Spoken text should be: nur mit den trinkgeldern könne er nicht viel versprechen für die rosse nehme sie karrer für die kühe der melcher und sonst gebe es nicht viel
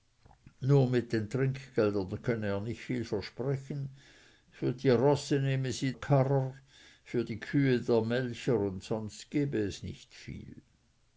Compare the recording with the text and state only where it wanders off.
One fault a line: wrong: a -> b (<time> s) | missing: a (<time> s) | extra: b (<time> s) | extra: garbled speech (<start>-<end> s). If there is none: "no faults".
no faults